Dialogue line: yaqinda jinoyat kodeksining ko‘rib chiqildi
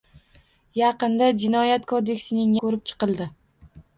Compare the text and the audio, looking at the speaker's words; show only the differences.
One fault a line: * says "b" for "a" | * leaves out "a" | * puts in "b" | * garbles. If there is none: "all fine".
all fine